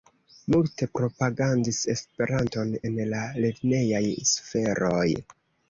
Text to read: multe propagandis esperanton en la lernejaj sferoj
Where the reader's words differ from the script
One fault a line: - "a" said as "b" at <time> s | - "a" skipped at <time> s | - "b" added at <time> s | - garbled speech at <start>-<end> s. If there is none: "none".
none